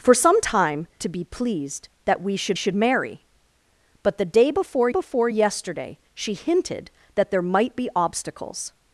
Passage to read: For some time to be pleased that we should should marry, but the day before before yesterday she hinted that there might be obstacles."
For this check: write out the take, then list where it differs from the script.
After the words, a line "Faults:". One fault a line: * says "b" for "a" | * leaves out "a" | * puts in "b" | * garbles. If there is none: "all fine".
For some time to be pleased that we should should marry, but the day before before yesterday she hinted that there might be obstacles."
Faults:
all fine